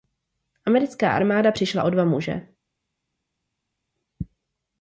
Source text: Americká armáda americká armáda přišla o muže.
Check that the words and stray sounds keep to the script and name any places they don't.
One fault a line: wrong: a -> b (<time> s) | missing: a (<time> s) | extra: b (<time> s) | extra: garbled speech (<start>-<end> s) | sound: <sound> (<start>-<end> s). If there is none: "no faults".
missing: americká armáda (1.5 s)
extra: dva (1.9 s)